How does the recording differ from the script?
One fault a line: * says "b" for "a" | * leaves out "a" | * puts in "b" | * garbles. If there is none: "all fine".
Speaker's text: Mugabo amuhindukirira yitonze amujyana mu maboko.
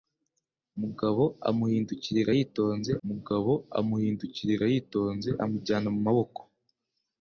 * puts in "mugabo amuhindukirira yitonze"